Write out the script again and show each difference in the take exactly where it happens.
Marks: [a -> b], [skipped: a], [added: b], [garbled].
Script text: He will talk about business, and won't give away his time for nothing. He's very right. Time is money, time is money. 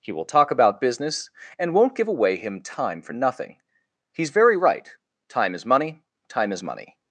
He will talk about business, and won't give away [his -> him] time for nothing. He's very right. Time is money, time is money.